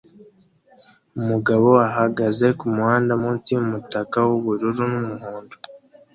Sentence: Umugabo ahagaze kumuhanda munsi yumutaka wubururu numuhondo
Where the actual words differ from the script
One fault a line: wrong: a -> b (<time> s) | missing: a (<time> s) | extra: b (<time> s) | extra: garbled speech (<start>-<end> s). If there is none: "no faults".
no faults